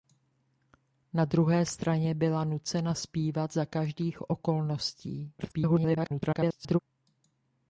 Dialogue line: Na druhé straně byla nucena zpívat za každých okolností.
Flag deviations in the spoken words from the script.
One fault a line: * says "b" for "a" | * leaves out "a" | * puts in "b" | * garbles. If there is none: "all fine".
* garbles